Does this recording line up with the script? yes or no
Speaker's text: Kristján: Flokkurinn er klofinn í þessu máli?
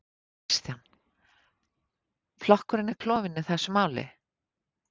yes